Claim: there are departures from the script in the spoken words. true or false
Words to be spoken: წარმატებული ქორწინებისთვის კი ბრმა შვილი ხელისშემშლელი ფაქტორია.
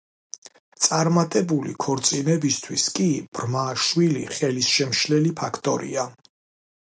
false